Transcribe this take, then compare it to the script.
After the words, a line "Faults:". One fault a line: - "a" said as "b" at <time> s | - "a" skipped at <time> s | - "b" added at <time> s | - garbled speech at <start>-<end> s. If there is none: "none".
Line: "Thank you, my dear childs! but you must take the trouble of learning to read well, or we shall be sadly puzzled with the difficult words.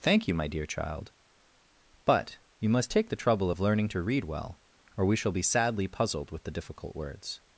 "Thank you, my dear child! but you must take the trouble of learning to read well, or we shall be sadly puzzled with the difficult words.
Faults:
- "childs" said as "child" at 0.7 s